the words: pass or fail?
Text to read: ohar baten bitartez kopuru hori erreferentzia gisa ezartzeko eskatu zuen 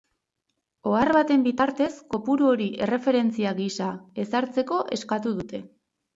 fail